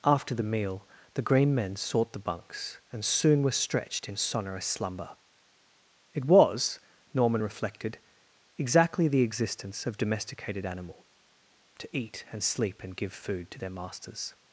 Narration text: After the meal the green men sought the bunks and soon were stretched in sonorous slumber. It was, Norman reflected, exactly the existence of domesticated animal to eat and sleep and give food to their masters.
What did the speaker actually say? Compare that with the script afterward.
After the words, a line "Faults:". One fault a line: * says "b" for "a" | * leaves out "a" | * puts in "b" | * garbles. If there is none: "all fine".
After the meal the green men sought the bunks and soon were stretched in sonorous slumber. It was, Norman reflected, exactly the existence of domesticated animal to eat and sleep and give food to their masters.
Faults:
all fine